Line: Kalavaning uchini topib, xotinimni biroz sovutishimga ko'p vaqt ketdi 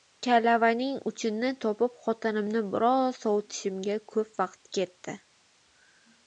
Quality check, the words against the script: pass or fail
pass